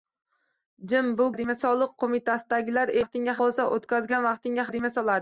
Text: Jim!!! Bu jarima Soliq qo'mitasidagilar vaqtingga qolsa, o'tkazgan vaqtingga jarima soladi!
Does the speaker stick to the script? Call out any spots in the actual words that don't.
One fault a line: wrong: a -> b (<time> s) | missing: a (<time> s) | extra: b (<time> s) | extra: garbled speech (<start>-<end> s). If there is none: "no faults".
no faults